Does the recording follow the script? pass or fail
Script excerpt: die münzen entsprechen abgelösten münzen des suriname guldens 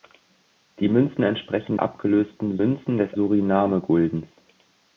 pass